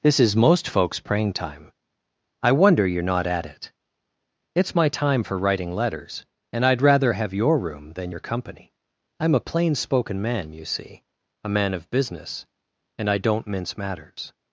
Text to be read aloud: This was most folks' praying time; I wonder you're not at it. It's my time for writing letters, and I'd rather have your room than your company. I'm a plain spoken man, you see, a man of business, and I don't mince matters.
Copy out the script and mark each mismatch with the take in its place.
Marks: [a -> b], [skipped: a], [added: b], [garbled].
This [was -> is] most folks' praying time; I wonder you're not at it. It's my time for writing letters, and I'd rather have your room than your company. I'm a plain spoken man, you see, a man of business, and I don't mince matters.